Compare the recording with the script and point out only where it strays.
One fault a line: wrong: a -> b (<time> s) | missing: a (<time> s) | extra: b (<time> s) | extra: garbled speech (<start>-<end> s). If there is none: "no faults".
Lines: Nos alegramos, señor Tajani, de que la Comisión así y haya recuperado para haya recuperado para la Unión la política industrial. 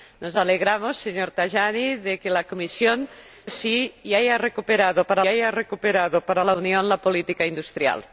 no faults